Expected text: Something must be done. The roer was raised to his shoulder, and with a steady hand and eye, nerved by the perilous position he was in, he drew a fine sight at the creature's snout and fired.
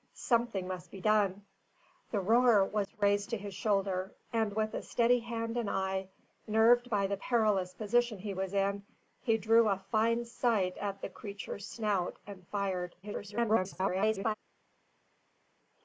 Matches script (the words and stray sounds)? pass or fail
fail